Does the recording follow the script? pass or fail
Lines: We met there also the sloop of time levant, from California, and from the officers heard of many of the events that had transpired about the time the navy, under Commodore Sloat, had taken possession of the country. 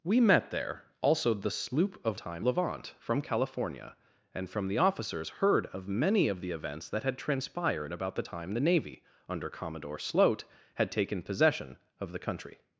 pass